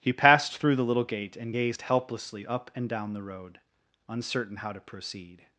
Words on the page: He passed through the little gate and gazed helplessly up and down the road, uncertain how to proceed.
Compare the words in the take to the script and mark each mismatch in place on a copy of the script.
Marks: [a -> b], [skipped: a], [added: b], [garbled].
He passed through the little gate and gazed helplessly up and down the road, uncertain how to proceed.